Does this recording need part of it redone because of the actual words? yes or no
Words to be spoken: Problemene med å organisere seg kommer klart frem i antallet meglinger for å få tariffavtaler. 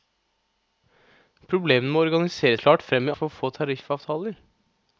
yes